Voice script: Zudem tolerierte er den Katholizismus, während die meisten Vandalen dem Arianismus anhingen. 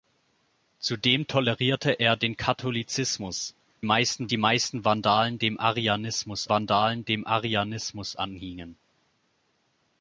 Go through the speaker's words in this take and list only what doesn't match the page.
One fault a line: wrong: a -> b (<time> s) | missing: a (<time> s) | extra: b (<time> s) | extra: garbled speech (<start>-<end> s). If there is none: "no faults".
wrong: während -> meisten (3.8 s)
extra: Vandalen dem Arianismus (6.5 s)